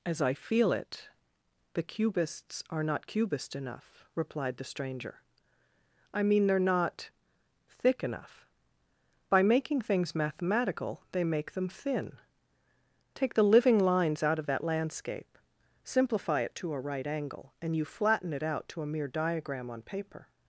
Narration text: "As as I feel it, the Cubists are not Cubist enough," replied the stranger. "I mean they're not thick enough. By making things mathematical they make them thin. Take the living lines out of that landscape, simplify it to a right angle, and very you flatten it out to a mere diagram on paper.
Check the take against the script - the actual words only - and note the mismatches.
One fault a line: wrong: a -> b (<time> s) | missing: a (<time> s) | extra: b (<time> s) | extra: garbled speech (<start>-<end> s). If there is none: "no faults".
missing: as (0.2 s)
missing: very (17.8 s)